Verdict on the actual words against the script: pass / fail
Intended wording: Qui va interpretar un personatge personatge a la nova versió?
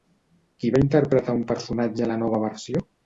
fail